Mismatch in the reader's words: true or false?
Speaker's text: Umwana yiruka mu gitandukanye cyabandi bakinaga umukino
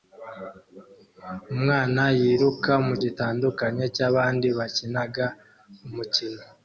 false